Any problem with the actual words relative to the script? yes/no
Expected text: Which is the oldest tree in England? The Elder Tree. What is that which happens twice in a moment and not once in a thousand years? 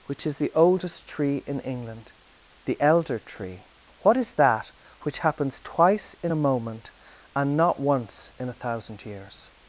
no